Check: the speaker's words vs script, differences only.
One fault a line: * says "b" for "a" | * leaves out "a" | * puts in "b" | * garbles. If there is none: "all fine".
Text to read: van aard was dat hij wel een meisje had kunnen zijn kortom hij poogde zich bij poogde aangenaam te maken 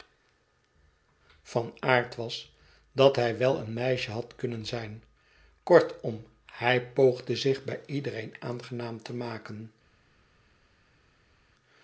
* says "iedereen" for "poogde"